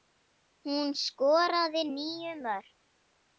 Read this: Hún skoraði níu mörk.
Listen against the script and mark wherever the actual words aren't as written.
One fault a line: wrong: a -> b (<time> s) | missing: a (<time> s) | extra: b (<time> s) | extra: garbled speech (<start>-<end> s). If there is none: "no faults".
no faults